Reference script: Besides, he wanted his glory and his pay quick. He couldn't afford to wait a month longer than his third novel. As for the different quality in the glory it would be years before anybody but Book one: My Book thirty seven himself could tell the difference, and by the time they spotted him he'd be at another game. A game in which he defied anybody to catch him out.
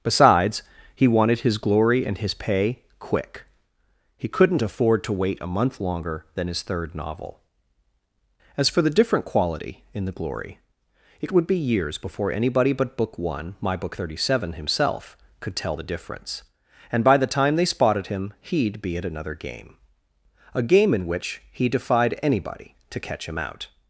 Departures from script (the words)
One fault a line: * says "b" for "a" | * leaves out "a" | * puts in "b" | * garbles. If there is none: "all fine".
all fine